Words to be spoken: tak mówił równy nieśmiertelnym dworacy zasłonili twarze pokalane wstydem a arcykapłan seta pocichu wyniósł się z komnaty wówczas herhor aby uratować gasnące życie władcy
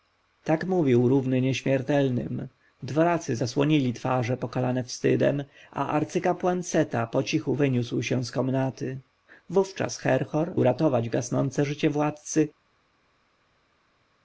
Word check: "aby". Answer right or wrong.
wrong